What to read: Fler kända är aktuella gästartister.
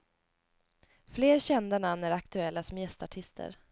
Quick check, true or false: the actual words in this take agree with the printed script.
false